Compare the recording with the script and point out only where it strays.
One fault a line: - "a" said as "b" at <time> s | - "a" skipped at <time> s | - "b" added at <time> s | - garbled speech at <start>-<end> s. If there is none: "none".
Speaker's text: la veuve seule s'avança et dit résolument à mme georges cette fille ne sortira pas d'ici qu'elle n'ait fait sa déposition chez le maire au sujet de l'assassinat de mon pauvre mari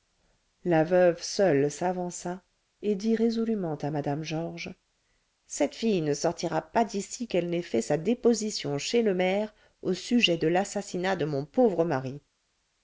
none